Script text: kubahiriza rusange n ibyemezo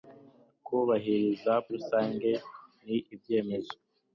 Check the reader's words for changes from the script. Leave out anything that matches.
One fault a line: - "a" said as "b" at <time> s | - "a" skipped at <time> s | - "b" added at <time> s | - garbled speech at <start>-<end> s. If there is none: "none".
none